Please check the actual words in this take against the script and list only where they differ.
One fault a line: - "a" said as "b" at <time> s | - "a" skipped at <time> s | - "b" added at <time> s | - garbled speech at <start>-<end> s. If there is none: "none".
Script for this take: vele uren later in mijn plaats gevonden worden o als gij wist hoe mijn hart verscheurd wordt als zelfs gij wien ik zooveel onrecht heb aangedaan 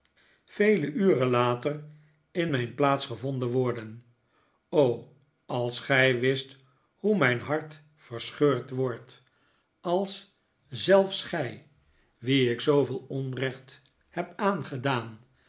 none